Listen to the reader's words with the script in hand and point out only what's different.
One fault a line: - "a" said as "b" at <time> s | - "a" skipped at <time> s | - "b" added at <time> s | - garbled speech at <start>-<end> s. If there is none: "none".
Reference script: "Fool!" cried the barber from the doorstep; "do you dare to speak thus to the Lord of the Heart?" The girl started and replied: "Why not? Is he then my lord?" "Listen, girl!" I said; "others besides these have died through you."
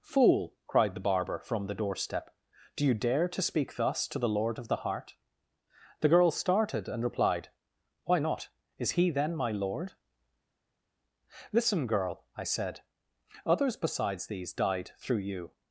- "have" skipped at 14.5 s